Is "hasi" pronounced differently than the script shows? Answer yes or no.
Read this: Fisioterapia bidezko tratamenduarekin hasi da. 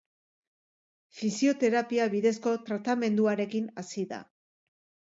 no